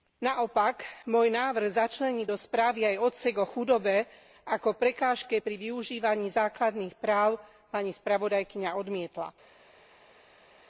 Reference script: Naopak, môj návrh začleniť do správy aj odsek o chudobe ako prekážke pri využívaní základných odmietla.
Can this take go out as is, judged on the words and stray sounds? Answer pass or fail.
fail